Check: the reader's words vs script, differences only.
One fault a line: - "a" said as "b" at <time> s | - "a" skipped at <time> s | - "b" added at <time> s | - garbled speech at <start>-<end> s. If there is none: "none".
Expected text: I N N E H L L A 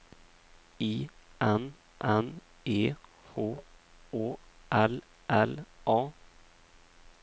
- "Å" added at 4.1 s